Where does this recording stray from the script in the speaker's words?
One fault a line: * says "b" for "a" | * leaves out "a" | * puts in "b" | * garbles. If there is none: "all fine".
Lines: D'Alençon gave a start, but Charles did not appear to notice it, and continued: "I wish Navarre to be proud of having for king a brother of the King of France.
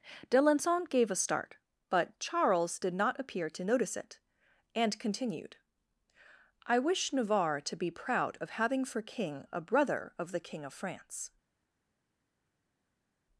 all fine